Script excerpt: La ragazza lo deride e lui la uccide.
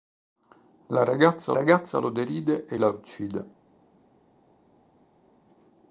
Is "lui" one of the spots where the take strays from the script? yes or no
yes